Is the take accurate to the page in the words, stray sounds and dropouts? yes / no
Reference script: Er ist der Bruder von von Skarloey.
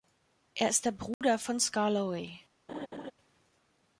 no